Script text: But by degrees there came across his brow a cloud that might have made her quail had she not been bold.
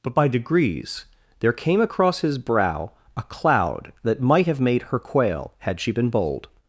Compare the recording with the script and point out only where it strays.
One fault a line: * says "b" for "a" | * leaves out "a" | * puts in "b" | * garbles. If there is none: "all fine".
* leaves out "not"